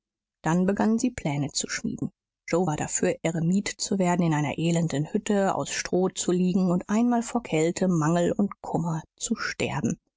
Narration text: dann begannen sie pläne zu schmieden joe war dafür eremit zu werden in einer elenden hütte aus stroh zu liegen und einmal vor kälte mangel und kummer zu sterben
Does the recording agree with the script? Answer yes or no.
yes